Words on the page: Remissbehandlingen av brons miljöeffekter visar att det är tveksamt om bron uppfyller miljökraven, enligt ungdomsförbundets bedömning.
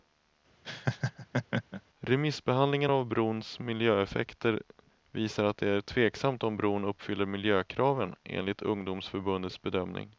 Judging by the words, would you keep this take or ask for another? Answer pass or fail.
pass